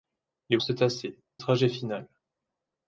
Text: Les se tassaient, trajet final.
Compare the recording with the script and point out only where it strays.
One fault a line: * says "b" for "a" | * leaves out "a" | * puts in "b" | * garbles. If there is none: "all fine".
all fine